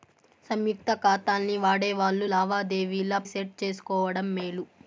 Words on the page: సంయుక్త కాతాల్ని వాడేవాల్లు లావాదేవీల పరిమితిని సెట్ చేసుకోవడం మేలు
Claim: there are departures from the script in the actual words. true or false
true